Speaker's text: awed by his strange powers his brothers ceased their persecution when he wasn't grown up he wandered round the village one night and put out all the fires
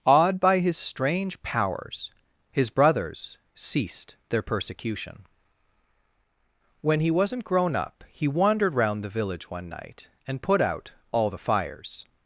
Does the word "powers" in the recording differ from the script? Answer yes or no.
no